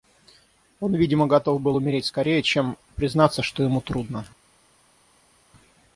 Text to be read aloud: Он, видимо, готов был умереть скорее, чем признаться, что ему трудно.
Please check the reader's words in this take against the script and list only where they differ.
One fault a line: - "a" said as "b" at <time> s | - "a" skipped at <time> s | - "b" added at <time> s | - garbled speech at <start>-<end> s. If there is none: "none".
none